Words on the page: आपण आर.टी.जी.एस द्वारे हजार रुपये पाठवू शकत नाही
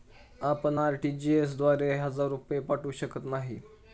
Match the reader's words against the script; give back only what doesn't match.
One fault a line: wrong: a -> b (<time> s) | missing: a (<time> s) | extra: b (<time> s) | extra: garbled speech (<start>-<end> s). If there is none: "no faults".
no faults